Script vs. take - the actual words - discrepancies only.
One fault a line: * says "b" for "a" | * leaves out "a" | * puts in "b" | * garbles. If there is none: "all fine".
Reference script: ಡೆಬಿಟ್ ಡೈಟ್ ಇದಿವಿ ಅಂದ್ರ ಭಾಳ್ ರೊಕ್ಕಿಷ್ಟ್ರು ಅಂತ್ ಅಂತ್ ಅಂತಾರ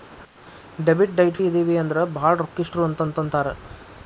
all fine